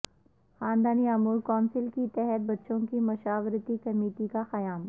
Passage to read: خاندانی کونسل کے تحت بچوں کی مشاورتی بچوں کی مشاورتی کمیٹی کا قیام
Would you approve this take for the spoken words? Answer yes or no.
no